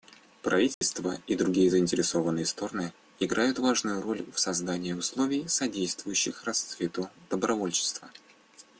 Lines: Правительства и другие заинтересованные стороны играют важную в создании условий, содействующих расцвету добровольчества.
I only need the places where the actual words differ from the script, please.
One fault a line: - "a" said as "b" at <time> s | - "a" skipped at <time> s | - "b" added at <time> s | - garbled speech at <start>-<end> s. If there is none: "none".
- "роль" added at 4.0 s